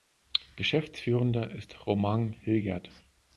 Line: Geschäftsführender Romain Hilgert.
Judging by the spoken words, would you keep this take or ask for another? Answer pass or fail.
fail